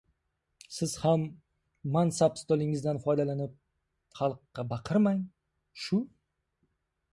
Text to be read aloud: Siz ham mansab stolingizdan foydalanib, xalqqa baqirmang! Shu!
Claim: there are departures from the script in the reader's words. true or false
false